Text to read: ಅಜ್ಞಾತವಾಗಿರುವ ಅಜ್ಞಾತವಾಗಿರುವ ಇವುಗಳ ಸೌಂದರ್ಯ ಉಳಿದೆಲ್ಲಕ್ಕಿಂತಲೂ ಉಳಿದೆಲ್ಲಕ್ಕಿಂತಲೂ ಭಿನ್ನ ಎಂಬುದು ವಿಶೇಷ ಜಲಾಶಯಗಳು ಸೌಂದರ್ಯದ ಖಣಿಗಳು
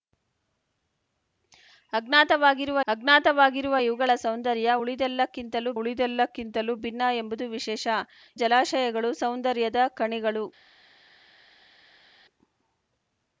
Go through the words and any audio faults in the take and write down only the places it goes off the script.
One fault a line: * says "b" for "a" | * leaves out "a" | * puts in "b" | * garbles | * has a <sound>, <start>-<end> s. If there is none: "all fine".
all fine